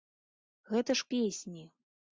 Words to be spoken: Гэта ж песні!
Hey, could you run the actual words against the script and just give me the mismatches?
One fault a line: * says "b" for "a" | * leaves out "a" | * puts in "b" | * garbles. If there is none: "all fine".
all fine